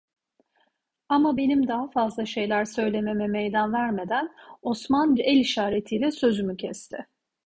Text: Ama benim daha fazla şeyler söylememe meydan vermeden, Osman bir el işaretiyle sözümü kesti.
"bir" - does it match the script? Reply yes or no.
no